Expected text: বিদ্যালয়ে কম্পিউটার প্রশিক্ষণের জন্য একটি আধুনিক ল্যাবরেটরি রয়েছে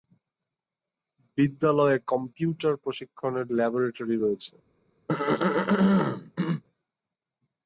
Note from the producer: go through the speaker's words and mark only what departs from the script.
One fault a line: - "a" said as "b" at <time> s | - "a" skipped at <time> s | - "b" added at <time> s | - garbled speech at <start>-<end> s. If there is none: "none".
- "জন্য একটি আধুনিক" skipped at 3.5 s